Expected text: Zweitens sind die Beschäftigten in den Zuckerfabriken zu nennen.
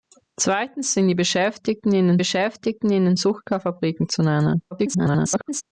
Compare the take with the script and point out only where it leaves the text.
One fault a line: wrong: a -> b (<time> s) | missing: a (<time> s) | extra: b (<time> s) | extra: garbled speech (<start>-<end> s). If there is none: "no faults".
extra: Beschäftigten in den (2.1 s)
extra: garbled speech (4.7-5.6 s)